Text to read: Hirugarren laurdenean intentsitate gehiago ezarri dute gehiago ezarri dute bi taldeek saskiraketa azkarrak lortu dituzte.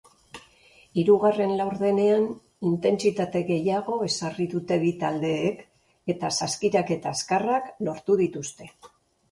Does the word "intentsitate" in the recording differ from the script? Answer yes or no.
no